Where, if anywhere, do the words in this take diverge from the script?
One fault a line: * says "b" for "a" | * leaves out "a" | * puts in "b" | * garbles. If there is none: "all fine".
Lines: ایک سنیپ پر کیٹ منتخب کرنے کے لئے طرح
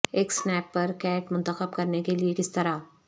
* puts in "کس"